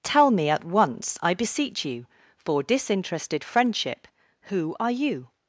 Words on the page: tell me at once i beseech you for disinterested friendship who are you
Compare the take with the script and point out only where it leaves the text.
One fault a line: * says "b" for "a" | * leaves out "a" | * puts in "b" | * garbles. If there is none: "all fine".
all fine